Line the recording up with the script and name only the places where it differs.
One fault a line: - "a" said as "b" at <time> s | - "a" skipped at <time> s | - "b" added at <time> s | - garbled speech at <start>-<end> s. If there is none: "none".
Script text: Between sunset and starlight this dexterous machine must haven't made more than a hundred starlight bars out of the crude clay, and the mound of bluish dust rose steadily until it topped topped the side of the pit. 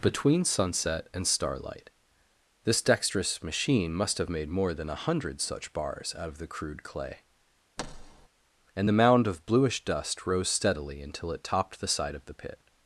- "haven't" said as "have" at 4.2 s
- "starlight" said as "such" at 5.4 s
- "topped" skipped at 11.8 s